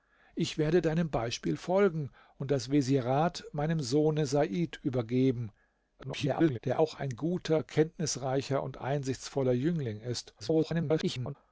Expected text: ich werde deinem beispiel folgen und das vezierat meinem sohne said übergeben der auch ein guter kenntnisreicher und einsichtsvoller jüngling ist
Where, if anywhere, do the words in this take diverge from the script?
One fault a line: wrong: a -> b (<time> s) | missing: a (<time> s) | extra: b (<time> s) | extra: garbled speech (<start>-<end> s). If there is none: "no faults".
extra: garbled speech (6.0-6.6 s)
extra: garbled speech (10.4-11.4 s)